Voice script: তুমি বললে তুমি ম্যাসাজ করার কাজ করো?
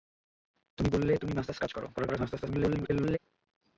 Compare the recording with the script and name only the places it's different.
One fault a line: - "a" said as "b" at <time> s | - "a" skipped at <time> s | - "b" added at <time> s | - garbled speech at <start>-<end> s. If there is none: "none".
- "করার" skipped at 1.6 s
- garbled speech at 1.9-3.2 s